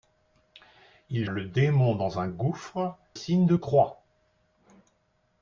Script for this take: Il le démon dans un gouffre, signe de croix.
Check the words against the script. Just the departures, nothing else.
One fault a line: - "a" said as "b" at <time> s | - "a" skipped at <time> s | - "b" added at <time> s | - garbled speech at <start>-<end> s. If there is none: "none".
none